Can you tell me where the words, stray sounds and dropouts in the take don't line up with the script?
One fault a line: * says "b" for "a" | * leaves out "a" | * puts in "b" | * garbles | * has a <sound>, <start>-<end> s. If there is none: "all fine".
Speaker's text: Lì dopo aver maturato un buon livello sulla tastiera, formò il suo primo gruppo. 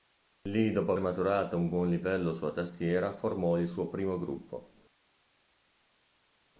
* leaves out "aver"